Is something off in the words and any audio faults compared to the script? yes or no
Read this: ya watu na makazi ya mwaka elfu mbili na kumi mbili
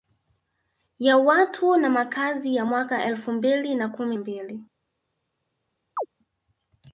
yes